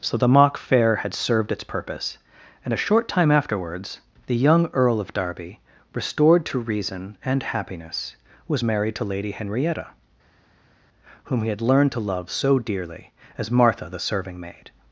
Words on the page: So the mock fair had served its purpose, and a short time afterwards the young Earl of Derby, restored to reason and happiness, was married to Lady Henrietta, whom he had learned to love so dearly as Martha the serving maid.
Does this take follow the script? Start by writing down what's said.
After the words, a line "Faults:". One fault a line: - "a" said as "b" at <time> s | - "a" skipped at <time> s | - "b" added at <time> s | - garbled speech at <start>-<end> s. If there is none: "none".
So the mock fair had served its purpose, and a short time afterwards the young Earl of Derby, restored to reason and happiness, was married to Lady Henrietta, whom he had learned to love so dearly as Martha the serving maid.
Faults:
none